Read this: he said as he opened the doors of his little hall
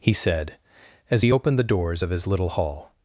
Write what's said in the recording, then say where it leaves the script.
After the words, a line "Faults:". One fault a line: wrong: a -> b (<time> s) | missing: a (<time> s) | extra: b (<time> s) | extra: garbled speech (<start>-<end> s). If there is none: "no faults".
he said as he opened the doors of his little hall
Faults:
no faults